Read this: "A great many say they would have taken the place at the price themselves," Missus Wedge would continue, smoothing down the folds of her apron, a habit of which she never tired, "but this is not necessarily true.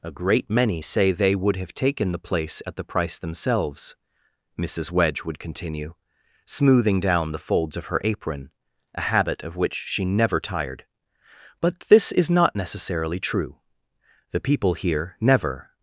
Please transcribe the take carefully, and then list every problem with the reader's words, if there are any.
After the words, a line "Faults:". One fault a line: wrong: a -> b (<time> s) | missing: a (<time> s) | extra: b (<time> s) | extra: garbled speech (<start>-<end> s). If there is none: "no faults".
"A great many say they would have taken the place at the price themselves," Missus Wedge would continue, smoothing down the folds of her apron, a habit of which she never tired, "but this is not necessarily true. The people here never
Faults:
extra: The people here never (14.3 s)